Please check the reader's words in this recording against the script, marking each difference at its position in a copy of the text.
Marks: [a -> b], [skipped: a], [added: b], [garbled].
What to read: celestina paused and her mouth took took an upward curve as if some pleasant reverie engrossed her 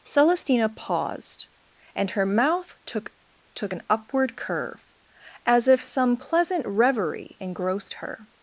celestina paused and her mouth took took an upward curve as if some pleasant reverie engrossed her